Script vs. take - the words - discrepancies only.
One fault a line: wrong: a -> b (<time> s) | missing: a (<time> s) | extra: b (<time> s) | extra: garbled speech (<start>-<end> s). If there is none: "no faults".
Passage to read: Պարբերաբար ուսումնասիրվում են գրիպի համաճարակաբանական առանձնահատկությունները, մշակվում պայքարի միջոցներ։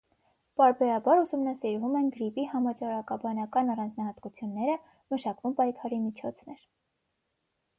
no faults